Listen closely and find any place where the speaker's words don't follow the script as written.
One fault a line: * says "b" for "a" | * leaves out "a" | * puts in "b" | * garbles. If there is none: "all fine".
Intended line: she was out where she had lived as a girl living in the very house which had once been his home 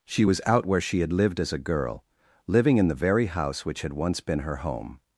* says "her" for "his"